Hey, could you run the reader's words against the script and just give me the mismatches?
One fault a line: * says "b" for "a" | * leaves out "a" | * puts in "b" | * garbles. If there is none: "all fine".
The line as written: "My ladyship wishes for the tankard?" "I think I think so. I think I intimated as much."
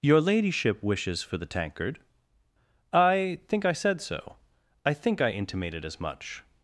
* says "Your" for "My"
* says "said" for "think"